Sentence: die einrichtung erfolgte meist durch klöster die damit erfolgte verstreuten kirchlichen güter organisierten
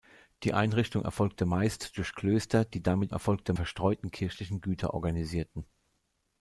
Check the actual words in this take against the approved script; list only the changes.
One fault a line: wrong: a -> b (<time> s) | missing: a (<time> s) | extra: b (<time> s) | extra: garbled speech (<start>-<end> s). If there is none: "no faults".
no faults